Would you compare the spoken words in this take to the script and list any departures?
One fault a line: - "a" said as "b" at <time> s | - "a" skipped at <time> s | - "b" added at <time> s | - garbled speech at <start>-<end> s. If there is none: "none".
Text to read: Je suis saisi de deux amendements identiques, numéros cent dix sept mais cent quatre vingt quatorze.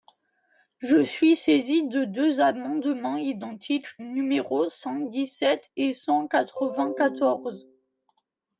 - "mais" said as "et" at 5.8 s